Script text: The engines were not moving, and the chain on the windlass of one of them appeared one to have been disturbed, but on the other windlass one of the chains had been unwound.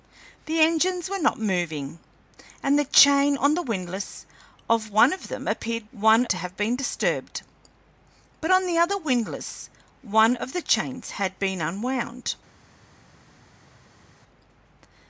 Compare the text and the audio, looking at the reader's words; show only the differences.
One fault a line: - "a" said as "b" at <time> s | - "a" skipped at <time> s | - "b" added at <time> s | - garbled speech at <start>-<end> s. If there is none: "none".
none